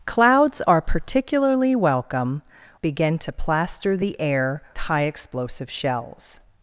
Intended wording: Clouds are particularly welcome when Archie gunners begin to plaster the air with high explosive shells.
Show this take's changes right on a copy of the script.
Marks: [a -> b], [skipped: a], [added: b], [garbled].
Clouds are particularly welcome [skipped: when Archie gunners] begin to plaster the air [skipped: with] high explosive shells.